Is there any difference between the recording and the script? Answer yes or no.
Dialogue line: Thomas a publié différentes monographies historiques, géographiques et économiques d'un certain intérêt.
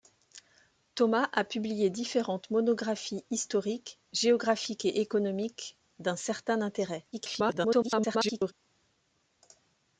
yes